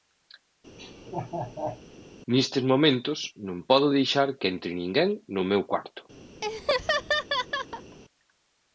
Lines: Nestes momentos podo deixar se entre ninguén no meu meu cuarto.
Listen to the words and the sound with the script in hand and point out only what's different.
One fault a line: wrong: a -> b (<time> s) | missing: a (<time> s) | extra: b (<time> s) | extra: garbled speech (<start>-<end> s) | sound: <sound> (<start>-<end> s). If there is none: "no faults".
sound: laugh (0.8-1.8 s)
extra: non (3.5 s)
wrong: se -> que (4.4 s)
missing: meu (5.6 s)
sound: laugh (6.4-8.0 s)